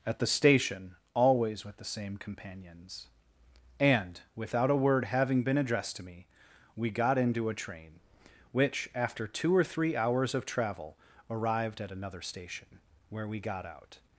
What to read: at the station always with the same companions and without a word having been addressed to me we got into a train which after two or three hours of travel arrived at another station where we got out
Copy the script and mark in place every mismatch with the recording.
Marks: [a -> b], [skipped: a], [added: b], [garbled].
at the station always with the same companions and without a word having been addressed to me we got into a train which after two or three hours of travel arrived at another station where we got out